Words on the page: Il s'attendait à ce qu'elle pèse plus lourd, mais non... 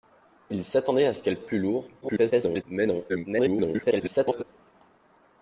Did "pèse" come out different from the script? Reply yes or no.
yes